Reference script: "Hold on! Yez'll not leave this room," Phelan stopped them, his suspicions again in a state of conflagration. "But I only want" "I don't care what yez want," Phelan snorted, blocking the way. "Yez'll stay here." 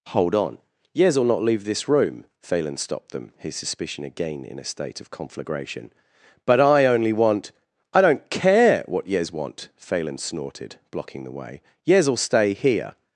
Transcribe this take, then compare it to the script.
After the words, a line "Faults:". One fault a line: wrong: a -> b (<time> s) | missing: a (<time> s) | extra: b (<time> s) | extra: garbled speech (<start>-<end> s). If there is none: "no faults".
"Hold on! Yez'll not leave this room," Phelan stopped them, his suspicion again in a state of conflagration. "But I only want" "I don't care what yez want," Phelan snorted, blocking the way. "Yez'll stay here."
Faults:
wrong: suspicions -> suspicion (3.5 s)